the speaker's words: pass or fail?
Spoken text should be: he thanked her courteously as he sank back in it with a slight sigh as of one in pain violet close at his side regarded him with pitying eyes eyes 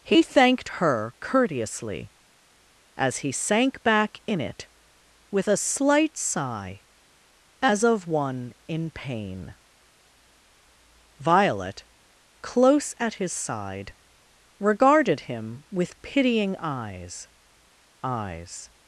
pass